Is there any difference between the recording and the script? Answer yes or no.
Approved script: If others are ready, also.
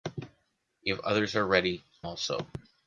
no